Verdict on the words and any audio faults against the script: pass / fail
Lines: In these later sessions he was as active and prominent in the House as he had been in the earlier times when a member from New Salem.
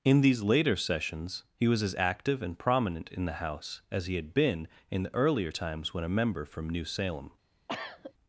fail